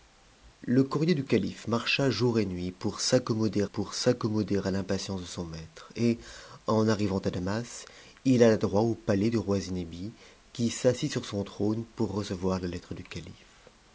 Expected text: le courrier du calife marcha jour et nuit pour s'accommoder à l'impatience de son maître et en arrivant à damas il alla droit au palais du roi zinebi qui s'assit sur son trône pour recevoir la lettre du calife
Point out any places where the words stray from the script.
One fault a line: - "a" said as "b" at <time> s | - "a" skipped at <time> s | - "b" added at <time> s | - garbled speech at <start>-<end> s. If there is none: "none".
- "pour s'accommoder" added at 3.6 s